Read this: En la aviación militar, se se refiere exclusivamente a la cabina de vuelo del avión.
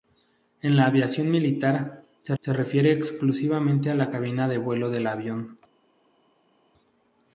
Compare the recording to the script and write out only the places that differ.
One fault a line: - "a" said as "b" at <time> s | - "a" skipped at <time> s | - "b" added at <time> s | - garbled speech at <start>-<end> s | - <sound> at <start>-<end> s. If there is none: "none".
none